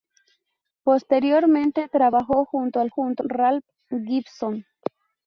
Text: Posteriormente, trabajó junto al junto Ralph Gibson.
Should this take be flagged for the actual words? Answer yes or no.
no